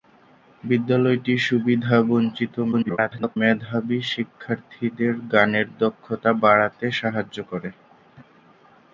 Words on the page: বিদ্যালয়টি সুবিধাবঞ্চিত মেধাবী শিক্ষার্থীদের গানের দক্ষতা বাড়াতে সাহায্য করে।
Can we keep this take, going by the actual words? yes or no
no